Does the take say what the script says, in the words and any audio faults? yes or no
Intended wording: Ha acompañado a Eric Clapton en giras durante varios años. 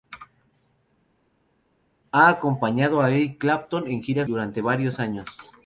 yes